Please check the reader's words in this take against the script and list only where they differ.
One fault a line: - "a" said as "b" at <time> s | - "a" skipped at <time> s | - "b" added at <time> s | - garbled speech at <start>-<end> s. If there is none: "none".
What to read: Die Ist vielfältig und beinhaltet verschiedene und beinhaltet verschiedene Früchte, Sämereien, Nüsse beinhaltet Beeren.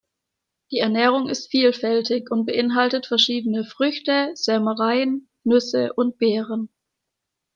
- "Ernährung" added at 0.8 s
- "und beinhaltet verschiedene" skipped at 3.6 s
- "beinhaltet" said as "und" at 5.9 s